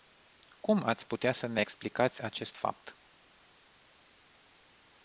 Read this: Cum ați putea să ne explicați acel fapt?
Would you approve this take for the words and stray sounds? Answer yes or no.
no